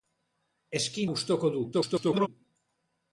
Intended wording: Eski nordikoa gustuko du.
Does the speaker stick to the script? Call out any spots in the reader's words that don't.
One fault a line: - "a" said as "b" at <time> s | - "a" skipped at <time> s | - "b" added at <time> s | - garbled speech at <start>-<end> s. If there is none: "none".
- "nordikoa" skipped at 1.0 s
- garbled speech at 1.7-2.3 s